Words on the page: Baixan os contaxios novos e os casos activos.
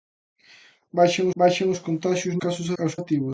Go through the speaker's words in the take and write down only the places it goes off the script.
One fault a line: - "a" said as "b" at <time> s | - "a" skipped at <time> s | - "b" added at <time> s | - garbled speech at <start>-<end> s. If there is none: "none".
- "baixan" added at 1.4 s
- "novos" said as "casos" at 2.4 s
- "casos" skipped at 2.9 s